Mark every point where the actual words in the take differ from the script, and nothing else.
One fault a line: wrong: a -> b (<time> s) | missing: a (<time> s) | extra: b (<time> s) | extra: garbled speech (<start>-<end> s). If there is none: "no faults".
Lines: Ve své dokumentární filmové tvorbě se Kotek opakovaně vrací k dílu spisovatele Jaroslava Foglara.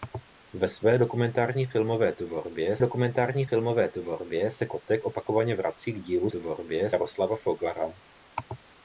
extra: dokumentární filmové tvorbě (2.8 s)
wrong: spisovatele -> tvorbě (6.3 s)